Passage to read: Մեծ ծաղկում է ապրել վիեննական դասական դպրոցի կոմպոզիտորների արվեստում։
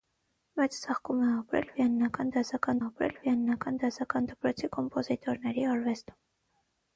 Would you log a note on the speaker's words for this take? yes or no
yes